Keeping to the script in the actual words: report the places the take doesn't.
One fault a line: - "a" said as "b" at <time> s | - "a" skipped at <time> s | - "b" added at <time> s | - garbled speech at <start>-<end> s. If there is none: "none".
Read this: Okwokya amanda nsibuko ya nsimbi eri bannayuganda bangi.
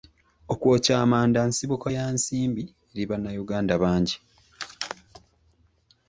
none